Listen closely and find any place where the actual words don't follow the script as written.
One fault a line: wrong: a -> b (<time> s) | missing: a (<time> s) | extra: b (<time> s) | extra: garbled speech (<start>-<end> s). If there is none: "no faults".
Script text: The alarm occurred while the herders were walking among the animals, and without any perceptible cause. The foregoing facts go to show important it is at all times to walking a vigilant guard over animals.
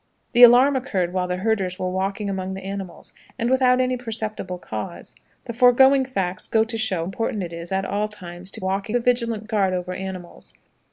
no faults